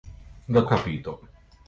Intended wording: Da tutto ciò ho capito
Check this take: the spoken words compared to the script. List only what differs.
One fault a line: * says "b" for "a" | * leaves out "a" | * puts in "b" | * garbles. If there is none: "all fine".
* leaves out "tutto ciò ho"